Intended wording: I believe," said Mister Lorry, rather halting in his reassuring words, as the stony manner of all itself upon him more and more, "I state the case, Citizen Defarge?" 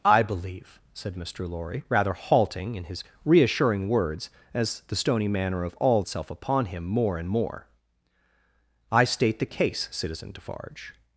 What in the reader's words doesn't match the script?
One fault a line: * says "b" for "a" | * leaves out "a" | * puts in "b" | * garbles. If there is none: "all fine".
all fine